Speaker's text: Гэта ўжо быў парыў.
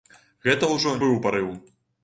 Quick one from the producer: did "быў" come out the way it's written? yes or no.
yes